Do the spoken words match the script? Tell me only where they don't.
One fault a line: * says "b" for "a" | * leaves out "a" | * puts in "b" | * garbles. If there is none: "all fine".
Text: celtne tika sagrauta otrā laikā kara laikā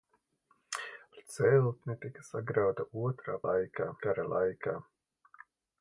all fine